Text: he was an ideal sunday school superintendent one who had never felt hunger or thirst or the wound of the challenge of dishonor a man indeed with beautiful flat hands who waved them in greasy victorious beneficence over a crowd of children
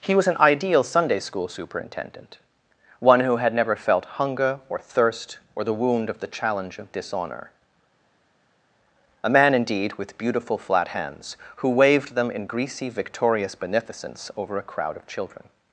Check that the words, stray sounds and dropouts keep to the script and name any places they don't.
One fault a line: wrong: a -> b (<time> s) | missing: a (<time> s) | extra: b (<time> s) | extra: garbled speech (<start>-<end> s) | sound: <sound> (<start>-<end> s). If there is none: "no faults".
no faults